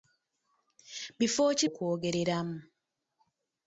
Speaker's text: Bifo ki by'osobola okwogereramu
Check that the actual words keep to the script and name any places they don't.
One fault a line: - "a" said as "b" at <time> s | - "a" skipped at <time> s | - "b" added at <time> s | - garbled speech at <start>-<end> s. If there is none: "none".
- "by'osobola" skipped at 1.6 s